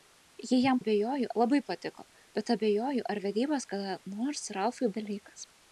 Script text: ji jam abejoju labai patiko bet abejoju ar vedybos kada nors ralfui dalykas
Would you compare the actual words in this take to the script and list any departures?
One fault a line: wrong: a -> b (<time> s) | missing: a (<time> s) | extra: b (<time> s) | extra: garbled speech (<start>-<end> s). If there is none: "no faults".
no faults